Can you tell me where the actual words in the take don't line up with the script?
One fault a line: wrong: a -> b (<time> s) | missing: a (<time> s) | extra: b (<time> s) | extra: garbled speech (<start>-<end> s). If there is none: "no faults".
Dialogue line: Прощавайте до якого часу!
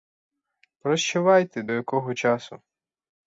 no faults